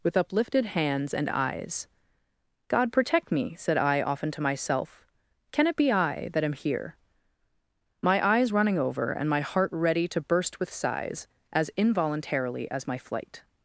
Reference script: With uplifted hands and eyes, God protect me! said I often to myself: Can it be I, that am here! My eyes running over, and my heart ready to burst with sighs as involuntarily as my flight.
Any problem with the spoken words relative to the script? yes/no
no